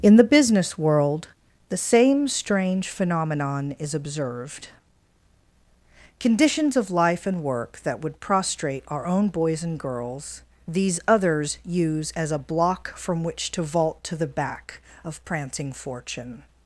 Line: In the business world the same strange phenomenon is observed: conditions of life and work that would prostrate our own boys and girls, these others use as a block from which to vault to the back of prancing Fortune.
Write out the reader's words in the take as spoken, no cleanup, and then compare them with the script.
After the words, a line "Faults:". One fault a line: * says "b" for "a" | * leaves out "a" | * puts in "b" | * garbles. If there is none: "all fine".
In the business world the same strange phenomenon is observed: conditions of life and work that would prostrate our own boys and girls, these others use as a block from which to vault to the back of prancing Fortune.
Faults:
all fine